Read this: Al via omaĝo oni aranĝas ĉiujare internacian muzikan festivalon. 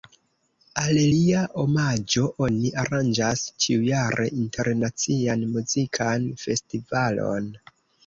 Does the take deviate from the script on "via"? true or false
true